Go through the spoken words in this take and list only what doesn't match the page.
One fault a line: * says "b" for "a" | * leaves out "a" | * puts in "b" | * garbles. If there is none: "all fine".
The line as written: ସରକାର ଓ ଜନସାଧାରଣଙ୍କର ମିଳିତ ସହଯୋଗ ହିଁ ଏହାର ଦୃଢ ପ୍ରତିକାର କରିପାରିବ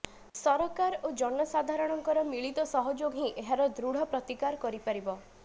all fine